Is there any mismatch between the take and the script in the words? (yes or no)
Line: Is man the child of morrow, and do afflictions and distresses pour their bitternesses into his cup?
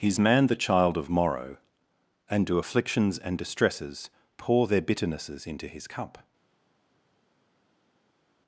no